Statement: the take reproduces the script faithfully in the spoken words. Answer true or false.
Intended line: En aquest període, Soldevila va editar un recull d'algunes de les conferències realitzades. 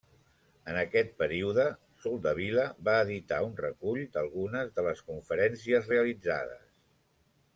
true